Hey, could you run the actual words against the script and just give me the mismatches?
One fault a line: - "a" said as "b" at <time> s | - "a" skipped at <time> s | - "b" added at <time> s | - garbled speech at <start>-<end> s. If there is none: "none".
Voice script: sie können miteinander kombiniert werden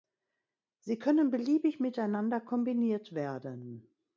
- "beliebig" added at 1.3 s